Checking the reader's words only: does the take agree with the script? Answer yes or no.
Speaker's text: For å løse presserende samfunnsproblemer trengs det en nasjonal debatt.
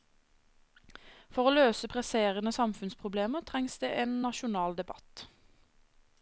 yes